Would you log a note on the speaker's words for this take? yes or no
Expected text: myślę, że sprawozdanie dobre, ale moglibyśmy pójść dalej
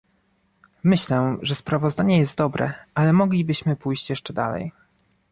yes